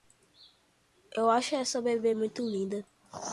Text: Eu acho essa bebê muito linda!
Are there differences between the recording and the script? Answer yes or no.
no